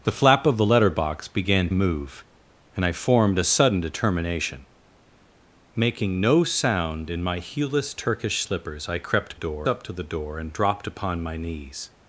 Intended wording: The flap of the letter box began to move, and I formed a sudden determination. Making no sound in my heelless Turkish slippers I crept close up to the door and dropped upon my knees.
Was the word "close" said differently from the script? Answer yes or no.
yes